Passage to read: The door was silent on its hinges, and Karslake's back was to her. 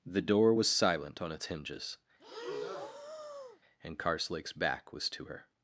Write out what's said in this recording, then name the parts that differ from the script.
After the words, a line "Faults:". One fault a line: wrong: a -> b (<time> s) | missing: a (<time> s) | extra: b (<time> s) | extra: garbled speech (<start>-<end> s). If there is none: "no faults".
The door was silent on its hinges, and Karslake's back was to her.
Faults:
no faults